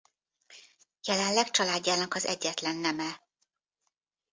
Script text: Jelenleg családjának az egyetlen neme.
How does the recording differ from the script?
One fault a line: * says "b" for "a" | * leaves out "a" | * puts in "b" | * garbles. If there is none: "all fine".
all fine